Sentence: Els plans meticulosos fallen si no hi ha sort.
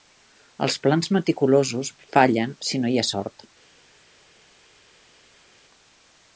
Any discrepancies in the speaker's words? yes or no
no